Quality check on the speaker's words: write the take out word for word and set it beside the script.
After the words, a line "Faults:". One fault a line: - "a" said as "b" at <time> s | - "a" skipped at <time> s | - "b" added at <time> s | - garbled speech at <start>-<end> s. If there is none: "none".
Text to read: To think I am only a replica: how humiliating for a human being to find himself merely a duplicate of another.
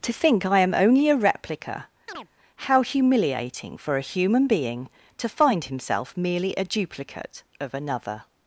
To think I am only a replica: how humiliating for a human being to find himself merely a duplicate of another.
Faults:
none